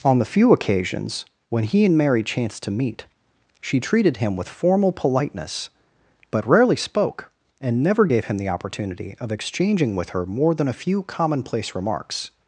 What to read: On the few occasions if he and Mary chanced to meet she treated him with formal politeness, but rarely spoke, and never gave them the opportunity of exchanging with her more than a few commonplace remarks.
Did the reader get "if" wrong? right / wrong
wrong